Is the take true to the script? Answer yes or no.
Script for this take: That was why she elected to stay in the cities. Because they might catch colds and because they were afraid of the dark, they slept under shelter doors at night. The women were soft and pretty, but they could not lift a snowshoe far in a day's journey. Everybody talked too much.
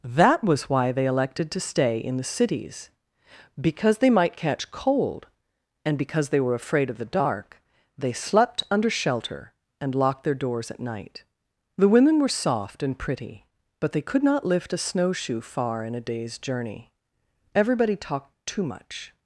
no